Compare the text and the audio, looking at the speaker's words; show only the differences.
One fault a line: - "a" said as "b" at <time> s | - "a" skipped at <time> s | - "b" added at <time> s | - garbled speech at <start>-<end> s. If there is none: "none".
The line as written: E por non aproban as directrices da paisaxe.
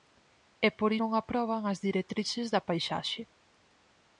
none